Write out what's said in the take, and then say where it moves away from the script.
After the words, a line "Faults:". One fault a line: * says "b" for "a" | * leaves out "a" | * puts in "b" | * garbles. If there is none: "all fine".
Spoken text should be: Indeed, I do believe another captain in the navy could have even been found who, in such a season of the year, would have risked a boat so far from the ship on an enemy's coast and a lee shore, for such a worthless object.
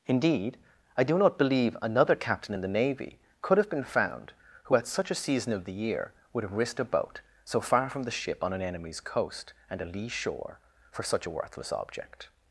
Indeed, I do not believe another captain in the navy could have been found who, at such a season of the year, would have risked a boat so far from the ship on an enemy's coast and a lee shore, for such a worthless object.
Faults:
* puts in "not"
* leaves out "even"
* says "at" for "in"